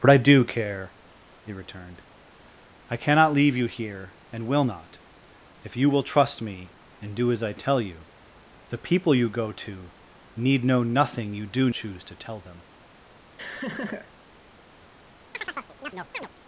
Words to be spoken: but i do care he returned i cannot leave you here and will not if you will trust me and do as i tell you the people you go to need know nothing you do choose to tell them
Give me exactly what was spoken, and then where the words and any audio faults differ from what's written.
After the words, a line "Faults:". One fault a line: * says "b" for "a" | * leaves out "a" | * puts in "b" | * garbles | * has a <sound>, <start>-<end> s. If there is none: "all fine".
but i do care he returned i cannot leave you here and will not if you will trust me and do as i tell you the people you go to need know nothing you do choose to tell them
Faults:
* has a laugh, 13.4-14.1 s
* has a chirp, 15.3-16.3 s